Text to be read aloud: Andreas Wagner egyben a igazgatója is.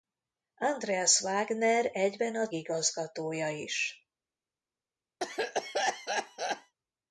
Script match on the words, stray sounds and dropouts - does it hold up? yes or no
no